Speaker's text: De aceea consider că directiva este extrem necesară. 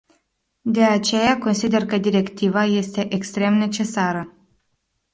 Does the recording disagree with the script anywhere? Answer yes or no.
no